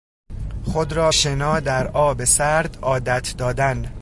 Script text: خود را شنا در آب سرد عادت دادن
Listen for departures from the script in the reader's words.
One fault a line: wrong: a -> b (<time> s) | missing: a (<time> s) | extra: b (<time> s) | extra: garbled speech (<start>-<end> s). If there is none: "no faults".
no faults